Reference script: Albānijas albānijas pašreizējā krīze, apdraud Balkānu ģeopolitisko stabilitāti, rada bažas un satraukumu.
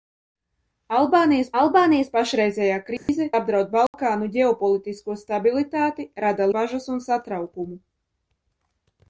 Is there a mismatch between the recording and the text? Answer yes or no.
no